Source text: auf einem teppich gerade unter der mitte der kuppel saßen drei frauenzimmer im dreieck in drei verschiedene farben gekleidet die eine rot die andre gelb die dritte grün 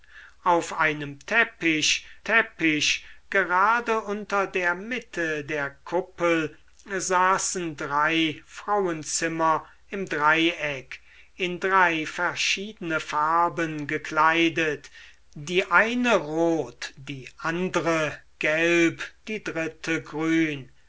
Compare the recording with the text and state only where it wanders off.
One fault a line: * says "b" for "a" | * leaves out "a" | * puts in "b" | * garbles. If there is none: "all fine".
* puts in "teppich"